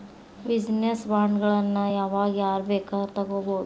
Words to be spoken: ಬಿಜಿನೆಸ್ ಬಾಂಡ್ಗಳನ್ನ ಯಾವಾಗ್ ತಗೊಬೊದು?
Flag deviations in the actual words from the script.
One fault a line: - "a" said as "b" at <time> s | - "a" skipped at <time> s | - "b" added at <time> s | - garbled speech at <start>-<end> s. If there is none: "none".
- "ಯಾರ್ ಬೇಕಾದ್ರು" added at 2.4 s